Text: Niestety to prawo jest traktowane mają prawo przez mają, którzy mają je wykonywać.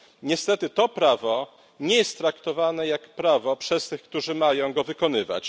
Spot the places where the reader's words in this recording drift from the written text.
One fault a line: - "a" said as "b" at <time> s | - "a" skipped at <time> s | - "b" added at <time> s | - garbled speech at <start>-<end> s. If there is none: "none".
- "nie" added at 1.8 s
- "mają" said as "jak" at 2.9 s
- "mają" said as "tych" at 3.9 s